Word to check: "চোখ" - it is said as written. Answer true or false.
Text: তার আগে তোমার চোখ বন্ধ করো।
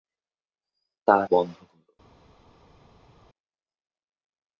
false